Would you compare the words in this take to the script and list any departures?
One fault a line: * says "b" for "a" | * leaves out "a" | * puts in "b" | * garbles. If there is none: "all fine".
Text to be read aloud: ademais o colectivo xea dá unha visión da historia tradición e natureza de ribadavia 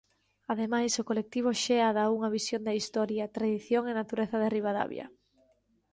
all fine